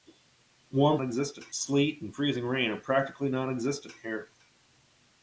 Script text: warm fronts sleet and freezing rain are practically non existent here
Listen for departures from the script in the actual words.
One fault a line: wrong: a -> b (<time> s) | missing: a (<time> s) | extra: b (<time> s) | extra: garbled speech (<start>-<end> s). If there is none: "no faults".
wrong: fronts -> existent (1.0 s)